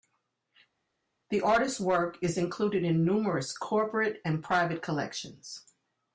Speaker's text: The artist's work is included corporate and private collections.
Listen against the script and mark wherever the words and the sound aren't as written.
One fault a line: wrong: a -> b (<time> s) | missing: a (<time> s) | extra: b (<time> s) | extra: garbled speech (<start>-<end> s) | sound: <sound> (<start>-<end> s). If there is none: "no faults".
extra: in numerous (2.8 s)